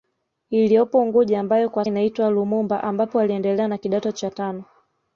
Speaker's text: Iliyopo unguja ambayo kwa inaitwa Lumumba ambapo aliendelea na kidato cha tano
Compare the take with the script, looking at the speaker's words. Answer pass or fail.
pass